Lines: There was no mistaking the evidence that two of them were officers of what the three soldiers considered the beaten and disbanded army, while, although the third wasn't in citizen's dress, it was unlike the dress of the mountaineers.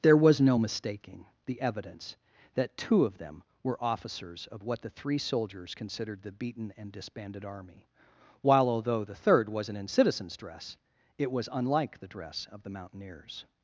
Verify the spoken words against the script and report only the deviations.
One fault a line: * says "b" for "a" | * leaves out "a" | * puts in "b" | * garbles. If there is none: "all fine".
all fine